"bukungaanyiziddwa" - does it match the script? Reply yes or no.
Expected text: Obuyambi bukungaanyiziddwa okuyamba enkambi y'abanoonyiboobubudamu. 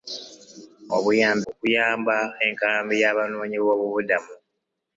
no